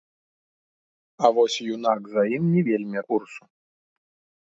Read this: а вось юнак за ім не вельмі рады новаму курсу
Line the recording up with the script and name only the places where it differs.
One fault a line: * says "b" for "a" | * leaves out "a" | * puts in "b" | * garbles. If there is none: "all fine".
* leaves out "рады новаму"